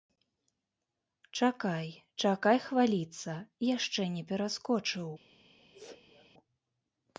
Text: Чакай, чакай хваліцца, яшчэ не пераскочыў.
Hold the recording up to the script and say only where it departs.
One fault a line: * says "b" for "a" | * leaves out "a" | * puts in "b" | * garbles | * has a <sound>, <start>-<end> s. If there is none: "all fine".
* has a sneeze, 5.6-6.3 s